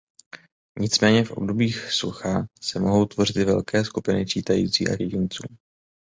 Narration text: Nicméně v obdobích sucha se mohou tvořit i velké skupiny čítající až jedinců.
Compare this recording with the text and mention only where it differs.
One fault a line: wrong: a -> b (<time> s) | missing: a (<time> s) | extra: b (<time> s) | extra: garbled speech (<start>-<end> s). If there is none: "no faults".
no faults